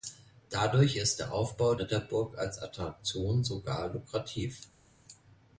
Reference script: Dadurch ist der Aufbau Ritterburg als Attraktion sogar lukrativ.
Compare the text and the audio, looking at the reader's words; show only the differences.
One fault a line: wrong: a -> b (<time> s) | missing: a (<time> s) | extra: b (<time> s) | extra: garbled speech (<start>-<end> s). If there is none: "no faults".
no faults